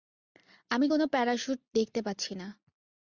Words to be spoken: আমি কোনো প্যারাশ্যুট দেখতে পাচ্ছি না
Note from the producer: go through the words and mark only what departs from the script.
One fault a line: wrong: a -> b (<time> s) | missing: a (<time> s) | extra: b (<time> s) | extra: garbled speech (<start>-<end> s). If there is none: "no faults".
no faults